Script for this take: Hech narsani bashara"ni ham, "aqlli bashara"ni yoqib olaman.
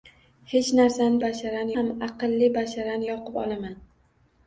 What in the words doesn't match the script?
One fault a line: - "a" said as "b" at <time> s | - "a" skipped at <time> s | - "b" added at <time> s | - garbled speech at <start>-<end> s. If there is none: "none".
none